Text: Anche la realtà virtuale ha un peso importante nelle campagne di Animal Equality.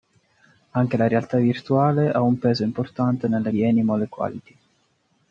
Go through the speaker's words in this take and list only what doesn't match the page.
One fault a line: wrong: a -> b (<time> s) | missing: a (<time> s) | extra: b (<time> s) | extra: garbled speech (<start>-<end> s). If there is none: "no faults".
missing: campagne (3.5 s)